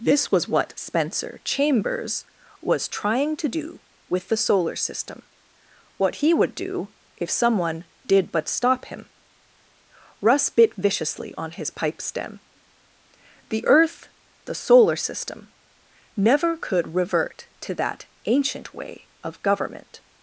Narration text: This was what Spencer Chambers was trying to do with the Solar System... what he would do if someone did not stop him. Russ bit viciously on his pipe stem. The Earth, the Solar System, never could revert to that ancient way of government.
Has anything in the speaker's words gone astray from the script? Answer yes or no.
yes